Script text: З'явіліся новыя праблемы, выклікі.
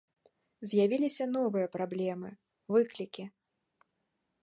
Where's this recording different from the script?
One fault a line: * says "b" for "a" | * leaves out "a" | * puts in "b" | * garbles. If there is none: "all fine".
all fine